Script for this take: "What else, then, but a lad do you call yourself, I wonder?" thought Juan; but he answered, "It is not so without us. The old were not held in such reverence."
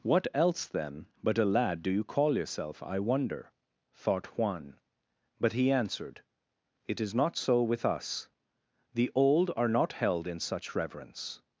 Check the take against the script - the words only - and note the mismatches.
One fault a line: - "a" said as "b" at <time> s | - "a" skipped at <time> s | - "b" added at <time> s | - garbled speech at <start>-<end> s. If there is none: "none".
- "without" said as "with" at 7.6 s
- "were" said as "are" at 9.6 s